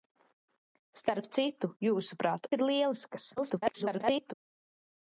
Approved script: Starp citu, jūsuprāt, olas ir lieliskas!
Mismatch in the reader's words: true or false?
true